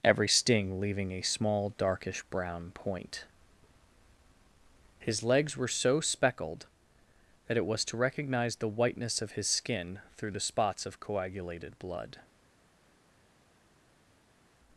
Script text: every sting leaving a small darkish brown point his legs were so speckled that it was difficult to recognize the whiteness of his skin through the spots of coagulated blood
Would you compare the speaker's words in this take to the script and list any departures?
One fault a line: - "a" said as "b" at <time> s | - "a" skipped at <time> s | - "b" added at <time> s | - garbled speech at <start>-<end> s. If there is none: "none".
- "difficult" skipped at 7.8 s